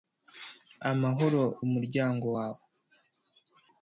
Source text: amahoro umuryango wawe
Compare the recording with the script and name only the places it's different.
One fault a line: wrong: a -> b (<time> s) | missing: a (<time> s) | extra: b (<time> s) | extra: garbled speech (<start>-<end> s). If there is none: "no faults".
no faults